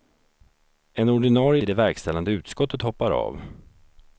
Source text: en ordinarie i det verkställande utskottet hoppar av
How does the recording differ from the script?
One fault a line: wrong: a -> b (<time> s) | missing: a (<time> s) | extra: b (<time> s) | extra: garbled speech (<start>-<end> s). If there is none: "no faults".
no faults